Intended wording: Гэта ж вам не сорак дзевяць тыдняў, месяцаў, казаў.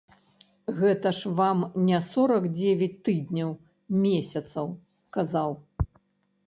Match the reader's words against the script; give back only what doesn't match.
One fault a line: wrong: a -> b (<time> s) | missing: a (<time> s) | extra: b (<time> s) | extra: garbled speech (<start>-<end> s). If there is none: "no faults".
no faults